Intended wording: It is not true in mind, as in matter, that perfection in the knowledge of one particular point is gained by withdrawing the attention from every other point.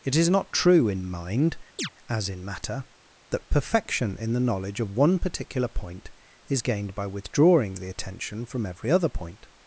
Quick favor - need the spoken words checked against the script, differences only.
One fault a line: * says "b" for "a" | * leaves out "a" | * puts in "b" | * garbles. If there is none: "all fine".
all fine